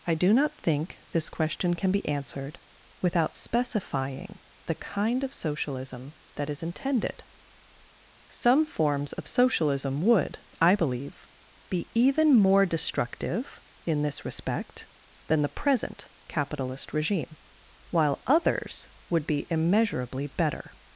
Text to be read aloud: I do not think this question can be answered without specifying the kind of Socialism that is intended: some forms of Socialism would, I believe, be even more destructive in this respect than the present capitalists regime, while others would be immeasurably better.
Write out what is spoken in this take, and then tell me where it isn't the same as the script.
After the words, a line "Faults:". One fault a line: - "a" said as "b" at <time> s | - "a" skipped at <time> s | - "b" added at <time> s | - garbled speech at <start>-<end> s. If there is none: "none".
I do not think this question can be answered without specifying the kind of Socialism that is intended: some forms of Socialism would, I believe, be even more destructive in this respect than the present capitalist regime, while others would be immeasurably better.
Faults:
- "capitalists" said as "capitalist" at 16.3 s